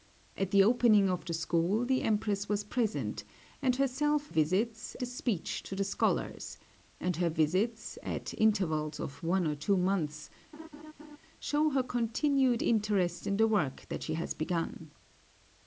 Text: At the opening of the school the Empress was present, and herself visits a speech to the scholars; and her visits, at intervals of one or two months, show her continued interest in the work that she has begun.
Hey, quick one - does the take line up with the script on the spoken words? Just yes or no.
yes